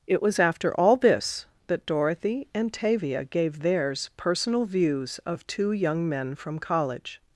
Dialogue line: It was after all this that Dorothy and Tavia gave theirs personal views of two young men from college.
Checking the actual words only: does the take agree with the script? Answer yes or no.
yes